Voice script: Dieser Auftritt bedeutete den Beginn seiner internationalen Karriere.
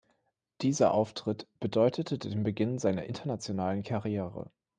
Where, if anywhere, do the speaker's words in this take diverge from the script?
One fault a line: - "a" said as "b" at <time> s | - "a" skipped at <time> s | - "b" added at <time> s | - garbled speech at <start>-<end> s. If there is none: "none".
none